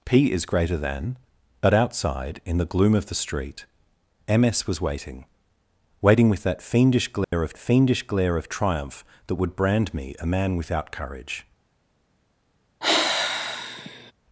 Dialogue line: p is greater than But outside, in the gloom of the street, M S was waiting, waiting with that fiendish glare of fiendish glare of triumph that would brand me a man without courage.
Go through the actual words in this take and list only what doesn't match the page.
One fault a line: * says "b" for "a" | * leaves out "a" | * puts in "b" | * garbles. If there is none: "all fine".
all fine